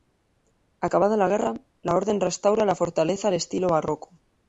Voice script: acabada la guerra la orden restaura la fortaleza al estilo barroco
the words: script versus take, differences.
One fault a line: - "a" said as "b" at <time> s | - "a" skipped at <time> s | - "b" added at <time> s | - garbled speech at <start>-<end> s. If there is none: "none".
none